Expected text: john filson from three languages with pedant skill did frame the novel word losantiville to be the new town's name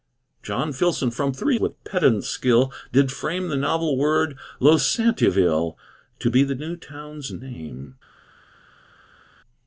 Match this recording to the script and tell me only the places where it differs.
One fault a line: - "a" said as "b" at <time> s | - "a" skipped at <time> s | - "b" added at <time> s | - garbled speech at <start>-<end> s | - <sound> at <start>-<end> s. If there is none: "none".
- "languages" skipped at 1.6 s